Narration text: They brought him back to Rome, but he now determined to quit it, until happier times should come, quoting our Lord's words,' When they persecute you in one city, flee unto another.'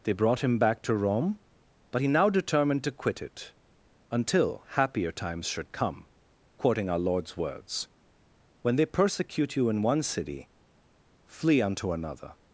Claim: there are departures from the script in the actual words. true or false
false